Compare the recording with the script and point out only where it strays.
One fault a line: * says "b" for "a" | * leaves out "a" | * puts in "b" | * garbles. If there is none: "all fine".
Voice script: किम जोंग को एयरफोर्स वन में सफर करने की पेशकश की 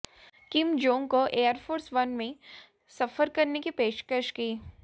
all fine